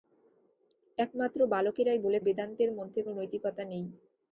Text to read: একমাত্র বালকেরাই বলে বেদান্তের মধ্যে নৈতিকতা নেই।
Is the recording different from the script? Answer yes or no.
no